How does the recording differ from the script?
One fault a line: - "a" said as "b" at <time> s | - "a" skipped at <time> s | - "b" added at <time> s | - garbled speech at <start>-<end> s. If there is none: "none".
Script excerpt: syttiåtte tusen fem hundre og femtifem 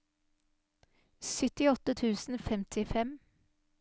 - "fem hundre" skipped at 2.4 s